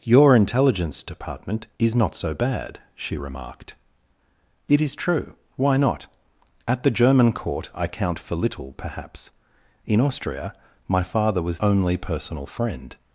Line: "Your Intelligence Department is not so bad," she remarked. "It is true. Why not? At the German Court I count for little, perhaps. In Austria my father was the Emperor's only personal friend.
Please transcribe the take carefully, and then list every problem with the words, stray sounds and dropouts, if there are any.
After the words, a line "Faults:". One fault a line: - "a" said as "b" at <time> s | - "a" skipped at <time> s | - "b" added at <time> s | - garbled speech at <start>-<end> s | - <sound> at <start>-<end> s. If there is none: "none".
"Your Intelligence Department is not so bad," she remarked. "It is true. Why not? At the German Court I count for little, perhaps. In Austria my father was only personal friend.
Faults:
- "the Emperor's" skipped at 11.6 s